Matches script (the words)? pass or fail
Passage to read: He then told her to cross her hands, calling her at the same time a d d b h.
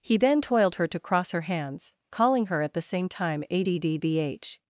fail